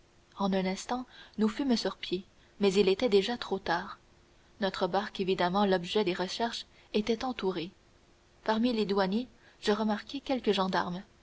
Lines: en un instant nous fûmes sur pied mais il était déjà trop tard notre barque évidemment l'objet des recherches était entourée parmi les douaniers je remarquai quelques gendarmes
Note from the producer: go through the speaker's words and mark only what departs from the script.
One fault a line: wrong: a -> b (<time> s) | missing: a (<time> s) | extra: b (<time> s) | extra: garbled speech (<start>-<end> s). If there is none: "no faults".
no faults